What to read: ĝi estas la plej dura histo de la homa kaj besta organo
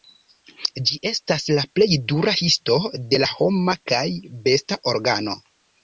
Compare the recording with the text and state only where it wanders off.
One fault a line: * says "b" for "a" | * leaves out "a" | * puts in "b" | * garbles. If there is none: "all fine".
all fine